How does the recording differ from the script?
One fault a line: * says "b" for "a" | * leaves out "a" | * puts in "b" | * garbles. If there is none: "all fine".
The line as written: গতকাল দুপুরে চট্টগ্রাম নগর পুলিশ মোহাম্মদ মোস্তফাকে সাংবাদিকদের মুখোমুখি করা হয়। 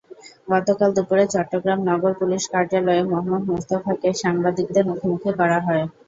* puts in "কার্যালয়ে"